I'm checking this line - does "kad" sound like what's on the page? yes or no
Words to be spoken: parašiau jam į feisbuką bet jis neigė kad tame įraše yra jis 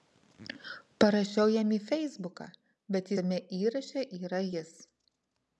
no